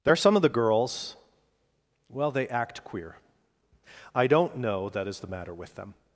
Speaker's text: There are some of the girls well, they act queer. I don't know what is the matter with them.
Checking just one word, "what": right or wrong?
wrong